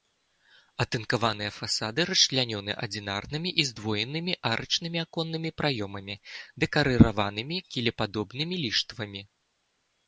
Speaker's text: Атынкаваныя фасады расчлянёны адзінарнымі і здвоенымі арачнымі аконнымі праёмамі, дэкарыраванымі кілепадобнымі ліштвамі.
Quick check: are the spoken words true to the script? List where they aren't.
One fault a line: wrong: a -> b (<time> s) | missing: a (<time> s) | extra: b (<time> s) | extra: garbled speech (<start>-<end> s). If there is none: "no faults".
no faults